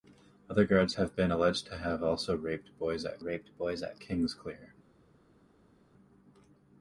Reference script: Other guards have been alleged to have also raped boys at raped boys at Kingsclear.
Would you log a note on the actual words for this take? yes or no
no